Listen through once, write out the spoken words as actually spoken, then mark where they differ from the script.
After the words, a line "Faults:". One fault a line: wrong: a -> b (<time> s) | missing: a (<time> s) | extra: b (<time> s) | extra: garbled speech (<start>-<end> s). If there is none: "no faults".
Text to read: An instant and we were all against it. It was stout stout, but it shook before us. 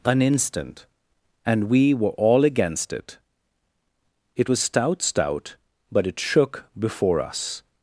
An instant and we were all against it. It was stout stout, but it shook before us.
Faults:
no faults